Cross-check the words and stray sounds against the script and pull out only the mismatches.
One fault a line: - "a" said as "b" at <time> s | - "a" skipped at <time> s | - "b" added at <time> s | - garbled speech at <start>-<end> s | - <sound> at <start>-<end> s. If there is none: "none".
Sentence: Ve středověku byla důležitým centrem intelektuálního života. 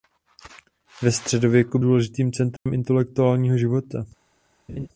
- "byla" skipped at 1.8 s
- dropout at 2.6-2.7 s
- laugh at 4.7-4.9 s